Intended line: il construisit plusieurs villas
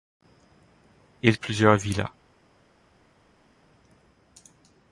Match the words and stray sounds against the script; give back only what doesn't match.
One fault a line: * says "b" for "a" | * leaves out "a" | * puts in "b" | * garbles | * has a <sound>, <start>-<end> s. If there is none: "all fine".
* leaves out "construisit"